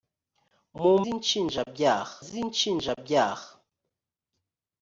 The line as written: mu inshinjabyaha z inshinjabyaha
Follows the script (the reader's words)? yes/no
yes